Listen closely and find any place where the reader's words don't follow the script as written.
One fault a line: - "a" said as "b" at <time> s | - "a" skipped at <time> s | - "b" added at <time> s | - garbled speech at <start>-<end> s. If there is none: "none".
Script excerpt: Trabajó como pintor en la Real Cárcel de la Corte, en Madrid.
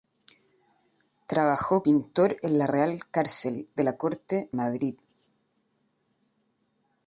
- "como" skipped at 1.8 s
- "en" skipped at 4.5 s